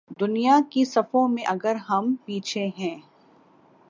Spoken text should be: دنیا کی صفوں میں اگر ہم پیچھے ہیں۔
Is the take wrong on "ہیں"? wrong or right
right